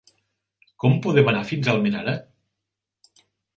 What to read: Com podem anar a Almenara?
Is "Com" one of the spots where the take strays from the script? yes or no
no